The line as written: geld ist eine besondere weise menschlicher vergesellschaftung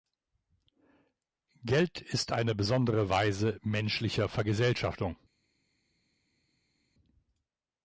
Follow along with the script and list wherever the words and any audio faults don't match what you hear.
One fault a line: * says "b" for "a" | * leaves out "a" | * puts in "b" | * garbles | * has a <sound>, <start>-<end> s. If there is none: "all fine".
all fine